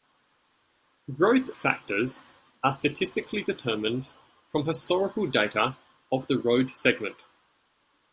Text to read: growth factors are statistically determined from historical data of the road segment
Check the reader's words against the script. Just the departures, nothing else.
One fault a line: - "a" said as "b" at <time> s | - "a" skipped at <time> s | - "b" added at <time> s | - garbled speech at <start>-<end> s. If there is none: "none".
none